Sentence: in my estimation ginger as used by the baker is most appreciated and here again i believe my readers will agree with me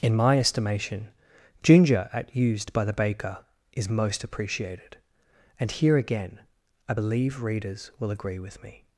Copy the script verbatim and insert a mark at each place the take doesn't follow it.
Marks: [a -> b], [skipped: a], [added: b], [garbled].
in my estimation ginger [as -> at] used by the baker is most appreciated and here again i believe [skipped: my] readers will agree with me